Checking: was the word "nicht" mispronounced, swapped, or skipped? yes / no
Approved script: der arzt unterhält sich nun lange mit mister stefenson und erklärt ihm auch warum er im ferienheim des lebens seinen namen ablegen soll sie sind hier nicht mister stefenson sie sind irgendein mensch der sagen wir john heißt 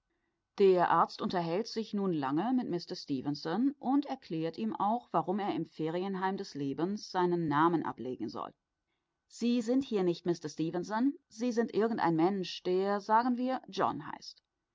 no